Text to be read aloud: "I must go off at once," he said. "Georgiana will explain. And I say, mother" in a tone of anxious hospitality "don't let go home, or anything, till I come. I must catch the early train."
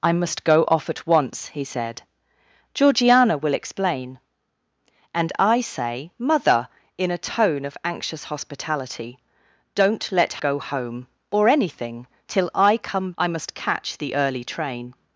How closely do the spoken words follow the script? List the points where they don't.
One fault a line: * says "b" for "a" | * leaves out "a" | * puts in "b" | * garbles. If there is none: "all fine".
all fine